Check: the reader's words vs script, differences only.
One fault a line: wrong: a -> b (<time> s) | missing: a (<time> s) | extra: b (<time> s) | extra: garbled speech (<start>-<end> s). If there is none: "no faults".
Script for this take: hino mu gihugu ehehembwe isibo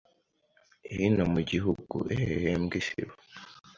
no faults